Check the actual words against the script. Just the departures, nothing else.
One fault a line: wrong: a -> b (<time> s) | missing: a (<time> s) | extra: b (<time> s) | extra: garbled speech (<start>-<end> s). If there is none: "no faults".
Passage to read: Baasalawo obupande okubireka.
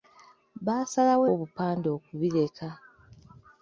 no faults